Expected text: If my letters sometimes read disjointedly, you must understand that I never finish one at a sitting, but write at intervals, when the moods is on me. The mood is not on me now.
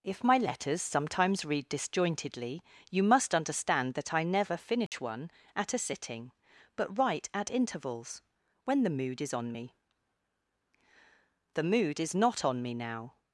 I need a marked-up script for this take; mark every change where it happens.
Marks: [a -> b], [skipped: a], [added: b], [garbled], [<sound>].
If my letters sometimes read disjointedly, you must understand that I never finish [dropout] one at a sitting, but write at intervals, when the [moods -> mood] is on me. The mood is not on me now.